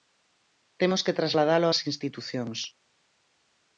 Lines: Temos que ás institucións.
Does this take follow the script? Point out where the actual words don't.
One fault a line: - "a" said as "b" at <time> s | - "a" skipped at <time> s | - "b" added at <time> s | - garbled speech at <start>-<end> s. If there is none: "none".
- "trasladalo" added at 1.2 s